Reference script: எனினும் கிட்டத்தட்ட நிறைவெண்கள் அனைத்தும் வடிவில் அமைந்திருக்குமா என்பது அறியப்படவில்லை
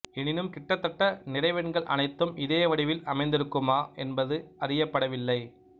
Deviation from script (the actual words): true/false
true